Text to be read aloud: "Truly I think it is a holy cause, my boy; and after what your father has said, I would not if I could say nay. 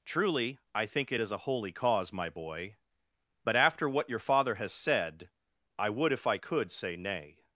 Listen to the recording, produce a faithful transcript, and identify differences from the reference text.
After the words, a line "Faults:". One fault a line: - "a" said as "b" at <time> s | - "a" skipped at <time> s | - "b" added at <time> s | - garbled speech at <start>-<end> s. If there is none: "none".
"Truly I think it is a holy cause, my boy; but after what your father has said, I would if I could say nay.
Faults:
- "and" said as "but" at 3.4 s
- "not" skipped at 6.1 s